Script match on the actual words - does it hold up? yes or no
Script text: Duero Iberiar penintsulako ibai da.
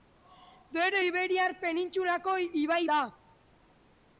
yes